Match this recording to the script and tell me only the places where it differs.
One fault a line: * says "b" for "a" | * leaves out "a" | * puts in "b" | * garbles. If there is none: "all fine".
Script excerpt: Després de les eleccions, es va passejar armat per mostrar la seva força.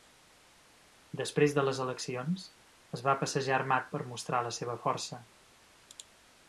all fine